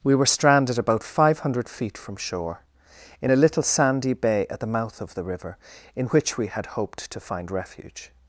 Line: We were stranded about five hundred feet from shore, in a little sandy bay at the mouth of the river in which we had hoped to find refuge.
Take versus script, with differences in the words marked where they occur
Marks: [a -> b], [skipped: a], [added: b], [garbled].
We were stranded about five hundred feet from shore, in a little sandy bay at the mouth of the river in which we had hoped to find refuge.